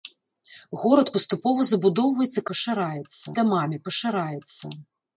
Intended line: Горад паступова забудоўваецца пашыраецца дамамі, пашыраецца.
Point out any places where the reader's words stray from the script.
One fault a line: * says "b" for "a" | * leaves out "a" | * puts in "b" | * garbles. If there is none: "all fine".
all fine